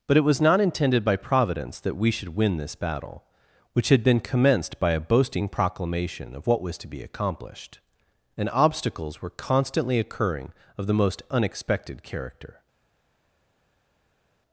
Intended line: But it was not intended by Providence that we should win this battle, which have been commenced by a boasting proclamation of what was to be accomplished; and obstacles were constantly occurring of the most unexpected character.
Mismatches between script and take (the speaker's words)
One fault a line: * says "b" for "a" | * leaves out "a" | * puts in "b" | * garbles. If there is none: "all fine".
* says "had" for "have"